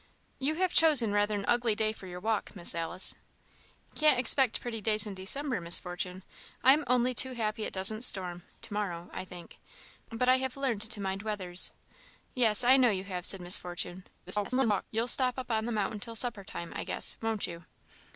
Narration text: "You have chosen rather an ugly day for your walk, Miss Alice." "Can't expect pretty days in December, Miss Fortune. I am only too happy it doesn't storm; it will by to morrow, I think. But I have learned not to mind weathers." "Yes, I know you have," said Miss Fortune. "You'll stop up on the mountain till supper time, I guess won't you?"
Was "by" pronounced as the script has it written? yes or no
no